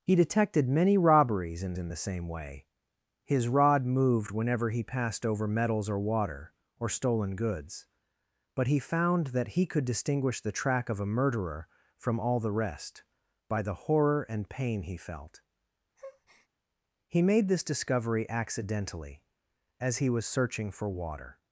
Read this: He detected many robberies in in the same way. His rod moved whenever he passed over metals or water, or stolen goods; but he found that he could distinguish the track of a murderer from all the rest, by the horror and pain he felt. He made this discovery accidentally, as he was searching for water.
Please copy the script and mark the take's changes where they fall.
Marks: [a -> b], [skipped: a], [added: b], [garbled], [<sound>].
He detected many robberies in in the same way. His rod moved whenever he passed over metals or water, or stolen goods; but he found that he could distinguish the track of a murderer from all the rest, by the horror and pain he felt. [breath] He made this discovery accidentally, as he was searching for water.